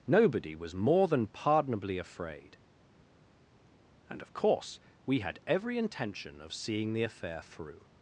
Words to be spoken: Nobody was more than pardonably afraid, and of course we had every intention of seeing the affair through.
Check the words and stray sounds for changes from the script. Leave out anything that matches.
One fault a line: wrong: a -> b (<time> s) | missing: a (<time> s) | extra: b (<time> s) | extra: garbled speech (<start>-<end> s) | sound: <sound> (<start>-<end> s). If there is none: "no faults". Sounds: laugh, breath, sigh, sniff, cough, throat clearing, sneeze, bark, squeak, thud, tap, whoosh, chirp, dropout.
no faults